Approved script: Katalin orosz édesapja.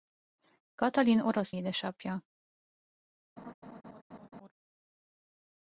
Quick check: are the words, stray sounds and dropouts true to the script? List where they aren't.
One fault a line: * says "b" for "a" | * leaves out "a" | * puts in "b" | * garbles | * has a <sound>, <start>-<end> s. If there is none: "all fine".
* has a laugh, 3.4-4.5 s